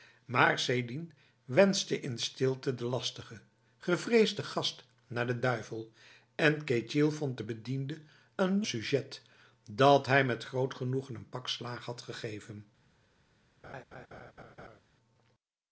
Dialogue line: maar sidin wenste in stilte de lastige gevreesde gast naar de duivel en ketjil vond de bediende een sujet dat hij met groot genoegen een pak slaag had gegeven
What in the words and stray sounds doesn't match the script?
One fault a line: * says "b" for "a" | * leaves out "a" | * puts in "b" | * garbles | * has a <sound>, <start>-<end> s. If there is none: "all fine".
* has a laugh, 13.6-14.8 s